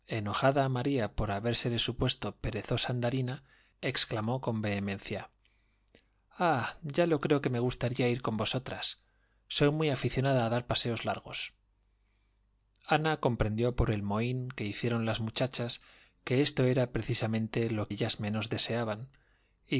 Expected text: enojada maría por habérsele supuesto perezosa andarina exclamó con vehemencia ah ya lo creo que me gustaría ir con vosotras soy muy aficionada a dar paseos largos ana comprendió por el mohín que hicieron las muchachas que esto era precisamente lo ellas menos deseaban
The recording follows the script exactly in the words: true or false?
true